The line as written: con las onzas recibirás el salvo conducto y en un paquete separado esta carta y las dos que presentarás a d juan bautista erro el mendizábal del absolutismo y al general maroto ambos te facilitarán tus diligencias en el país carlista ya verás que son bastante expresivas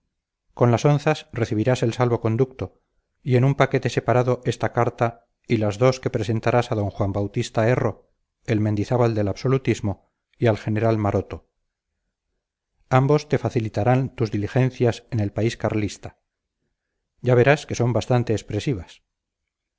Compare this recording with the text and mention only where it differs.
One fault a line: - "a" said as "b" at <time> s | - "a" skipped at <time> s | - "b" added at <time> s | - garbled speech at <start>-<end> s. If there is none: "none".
none